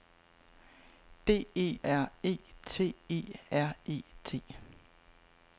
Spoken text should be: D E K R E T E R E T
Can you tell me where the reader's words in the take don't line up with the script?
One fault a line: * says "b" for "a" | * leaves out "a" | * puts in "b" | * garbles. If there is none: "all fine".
* leaves out "K"